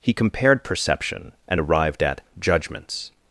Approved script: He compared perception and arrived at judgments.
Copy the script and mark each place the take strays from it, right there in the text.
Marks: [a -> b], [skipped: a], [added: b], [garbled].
He compared perception and arrived at judgments.